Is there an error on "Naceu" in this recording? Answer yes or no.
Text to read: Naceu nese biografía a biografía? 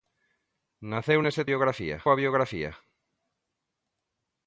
no